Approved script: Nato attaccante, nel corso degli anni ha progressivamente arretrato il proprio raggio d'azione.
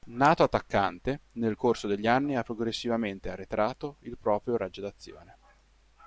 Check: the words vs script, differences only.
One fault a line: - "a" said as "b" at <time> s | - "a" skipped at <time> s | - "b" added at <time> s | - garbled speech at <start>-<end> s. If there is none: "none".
none